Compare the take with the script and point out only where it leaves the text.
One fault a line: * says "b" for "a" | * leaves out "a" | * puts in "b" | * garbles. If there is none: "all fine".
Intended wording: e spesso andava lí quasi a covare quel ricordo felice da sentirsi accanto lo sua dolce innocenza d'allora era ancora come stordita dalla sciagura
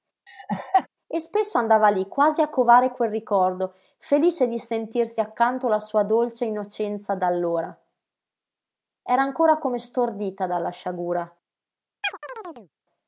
* says "di" for "da"
* says "la" for "lo"